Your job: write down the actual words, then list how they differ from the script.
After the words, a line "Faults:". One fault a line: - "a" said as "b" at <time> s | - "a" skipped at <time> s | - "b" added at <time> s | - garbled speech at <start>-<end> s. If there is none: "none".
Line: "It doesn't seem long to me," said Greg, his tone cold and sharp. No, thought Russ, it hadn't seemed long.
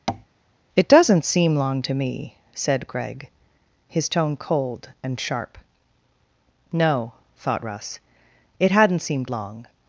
"It doesn't seem long to me," said Greg, his tone cold and sharp. No, thought Russ, it hadn't seemed long.
Faults:
none